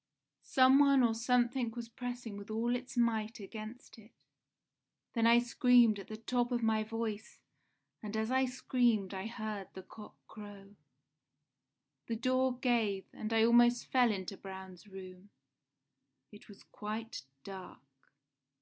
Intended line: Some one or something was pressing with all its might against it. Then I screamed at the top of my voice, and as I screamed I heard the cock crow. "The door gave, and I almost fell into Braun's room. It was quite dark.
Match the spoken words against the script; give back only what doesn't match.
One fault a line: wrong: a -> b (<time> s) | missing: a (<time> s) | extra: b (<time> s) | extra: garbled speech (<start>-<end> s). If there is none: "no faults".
no faults